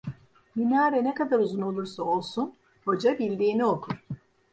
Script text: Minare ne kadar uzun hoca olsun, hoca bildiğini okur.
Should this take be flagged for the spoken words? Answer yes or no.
yes